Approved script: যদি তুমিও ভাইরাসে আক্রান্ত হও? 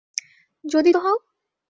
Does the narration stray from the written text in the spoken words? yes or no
yes